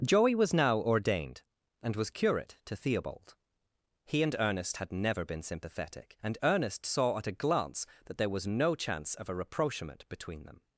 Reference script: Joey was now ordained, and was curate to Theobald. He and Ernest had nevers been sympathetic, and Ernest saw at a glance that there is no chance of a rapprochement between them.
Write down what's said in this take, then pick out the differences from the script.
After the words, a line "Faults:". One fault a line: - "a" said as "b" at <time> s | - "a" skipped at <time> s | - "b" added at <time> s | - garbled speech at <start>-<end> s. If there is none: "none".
Joey was now ordained, and was curate to Theobald. He and Ernest had never been sympathetic, and Ernest saw at a glance that there was no chance of a rapprochement between them.
Faults:
- "nevers" said as "never" at 4.9 s
- "is" said as "was" at 8.3 s